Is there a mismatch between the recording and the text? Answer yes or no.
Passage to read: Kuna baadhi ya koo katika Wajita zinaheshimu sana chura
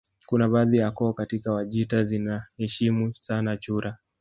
no